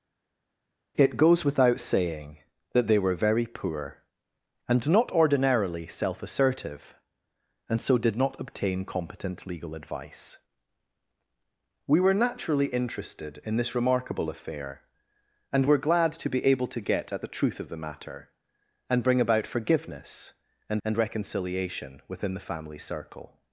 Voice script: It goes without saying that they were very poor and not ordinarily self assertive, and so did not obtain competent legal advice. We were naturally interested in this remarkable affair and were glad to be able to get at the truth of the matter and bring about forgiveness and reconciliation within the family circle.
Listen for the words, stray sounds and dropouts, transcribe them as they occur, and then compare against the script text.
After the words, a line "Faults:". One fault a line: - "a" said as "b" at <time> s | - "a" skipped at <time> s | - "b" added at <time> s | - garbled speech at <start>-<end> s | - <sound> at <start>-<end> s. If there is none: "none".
It goes without saying that they were very poor and not ordinarily self assertive, and so did not obtain competent legal advice. We were naturally interested in this remarkable affair and were glad to be able to get at the truth of the matter and bring about forgiveness and and reconciliation within the family circle.
Faults:
- "and" added at 20.8 s